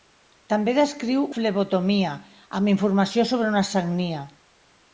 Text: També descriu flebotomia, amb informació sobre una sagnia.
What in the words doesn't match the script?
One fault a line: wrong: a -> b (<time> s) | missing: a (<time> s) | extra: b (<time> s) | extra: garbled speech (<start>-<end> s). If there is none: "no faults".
no faults